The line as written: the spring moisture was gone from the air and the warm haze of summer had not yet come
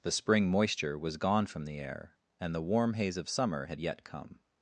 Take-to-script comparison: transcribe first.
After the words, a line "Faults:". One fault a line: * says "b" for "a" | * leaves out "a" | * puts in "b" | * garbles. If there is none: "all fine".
the spring moisture was gone from the air and the warm haze of summer had yet come
Faults:
* leaves out "not"